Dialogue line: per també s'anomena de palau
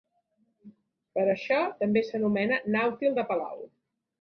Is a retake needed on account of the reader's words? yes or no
yes